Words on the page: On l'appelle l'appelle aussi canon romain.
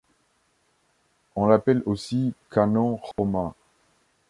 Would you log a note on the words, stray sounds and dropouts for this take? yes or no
yes